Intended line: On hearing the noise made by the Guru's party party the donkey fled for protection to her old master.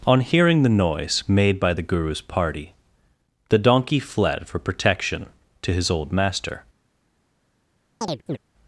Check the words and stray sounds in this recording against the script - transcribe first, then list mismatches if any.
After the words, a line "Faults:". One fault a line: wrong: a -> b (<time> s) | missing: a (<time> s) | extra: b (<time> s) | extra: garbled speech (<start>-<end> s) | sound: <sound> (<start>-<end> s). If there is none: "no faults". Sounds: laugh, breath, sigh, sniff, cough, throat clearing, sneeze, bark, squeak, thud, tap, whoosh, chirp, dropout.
On hearing the noise made by the Guru's party the donkey fled for protection to his old master.
Faults:
missing: party (2.7 s)
wrong: her -> his (5.7 s)
sound: chirp (8.0-8.4 s)